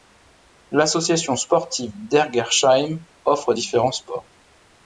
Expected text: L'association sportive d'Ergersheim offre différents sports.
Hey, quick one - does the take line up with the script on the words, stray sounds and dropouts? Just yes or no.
yes